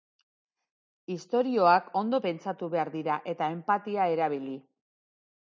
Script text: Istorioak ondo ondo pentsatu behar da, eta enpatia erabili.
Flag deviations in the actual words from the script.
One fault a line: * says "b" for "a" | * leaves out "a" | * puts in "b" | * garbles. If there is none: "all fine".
* leaves out "ondo"
* says "dira" for "da"